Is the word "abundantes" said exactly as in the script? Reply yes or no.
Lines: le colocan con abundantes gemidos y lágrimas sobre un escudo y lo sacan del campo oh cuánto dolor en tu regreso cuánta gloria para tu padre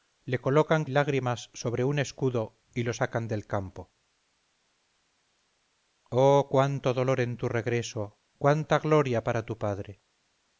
no